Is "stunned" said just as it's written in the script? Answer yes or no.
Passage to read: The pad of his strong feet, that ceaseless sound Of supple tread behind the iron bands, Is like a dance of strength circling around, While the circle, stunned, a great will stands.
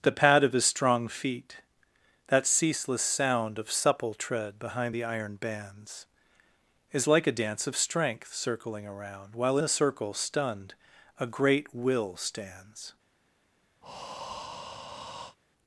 yes